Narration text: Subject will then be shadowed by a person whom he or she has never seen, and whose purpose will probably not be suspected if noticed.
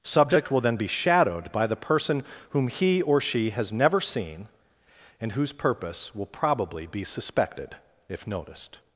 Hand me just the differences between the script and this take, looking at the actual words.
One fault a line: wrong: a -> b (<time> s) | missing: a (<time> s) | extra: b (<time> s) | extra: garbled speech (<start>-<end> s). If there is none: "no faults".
wrong: a -> the (1.7 s)
missing: not (6.9 s)